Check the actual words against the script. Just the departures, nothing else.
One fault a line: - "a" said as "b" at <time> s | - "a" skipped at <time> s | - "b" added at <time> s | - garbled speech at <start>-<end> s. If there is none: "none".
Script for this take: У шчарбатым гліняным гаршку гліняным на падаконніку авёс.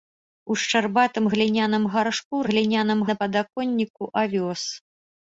none